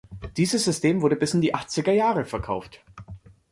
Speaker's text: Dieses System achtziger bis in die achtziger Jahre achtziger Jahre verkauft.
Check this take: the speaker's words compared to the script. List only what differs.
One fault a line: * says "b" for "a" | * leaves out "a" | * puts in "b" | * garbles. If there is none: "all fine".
* says "wurde" for "achtziger"
* leaves out "achtziger Jahre"